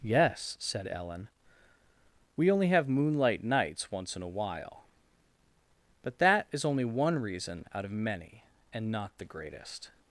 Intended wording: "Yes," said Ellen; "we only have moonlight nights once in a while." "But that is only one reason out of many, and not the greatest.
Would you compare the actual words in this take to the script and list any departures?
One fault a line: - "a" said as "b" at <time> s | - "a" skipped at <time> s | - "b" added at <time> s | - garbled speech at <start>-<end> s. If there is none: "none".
none